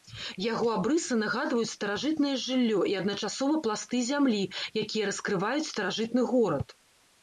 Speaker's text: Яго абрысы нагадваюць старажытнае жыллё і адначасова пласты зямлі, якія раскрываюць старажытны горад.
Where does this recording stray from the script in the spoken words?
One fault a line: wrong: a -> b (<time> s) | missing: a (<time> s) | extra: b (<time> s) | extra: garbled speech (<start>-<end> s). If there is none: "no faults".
no faults